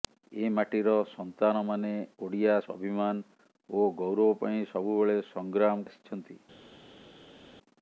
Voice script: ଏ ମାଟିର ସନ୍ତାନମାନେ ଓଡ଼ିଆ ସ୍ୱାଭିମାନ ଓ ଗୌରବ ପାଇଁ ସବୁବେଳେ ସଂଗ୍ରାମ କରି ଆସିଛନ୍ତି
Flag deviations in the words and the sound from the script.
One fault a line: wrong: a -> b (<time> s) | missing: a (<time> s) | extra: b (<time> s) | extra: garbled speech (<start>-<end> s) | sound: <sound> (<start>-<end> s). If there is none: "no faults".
missing: କରି (5.9 s)